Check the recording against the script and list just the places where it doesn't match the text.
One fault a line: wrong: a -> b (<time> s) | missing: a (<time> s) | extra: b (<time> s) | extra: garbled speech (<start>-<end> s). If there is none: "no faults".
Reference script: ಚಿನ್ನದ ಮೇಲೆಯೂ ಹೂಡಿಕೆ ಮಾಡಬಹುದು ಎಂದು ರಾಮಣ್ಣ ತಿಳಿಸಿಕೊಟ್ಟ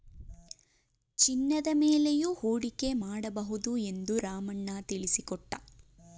no faults